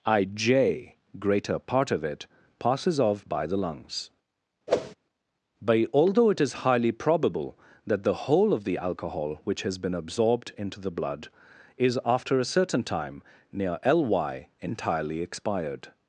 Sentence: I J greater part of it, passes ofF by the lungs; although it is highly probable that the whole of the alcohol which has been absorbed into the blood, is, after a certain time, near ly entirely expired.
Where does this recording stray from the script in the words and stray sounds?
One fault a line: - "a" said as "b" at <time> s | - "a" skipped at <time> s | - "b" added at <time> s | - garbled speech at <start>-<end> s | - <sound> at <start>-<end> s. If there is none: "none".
- whoosh at 4.7-5.0 s
- "but" added at 5.6 s